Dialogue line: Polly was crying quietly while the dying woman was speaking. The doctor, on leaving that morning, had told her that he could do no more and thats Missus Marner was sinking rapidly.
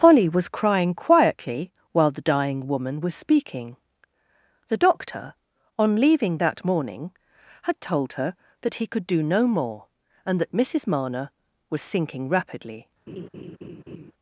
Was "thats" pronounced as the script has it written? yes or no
no